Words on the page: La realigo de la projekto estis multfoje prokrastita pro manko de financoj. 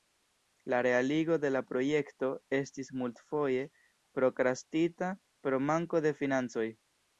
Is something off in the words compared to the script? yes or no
no